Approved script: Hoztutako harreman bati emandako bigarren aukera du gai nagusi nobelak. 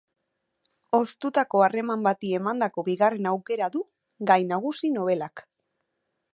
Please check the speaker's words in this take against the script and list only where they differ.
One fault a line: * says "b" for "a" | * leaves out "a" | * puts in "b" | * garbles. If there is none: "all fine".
all fine